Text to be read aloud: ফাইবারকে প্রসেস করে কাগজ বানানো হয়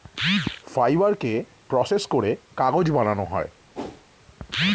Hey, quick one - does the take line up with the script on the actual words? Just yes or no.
yes